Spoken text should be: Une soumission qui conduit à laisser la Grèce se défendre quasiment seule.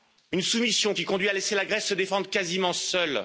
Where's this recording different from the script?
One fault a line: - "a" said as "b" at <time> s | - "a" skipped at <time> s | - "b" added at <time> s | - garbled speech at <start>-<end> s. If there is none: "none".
none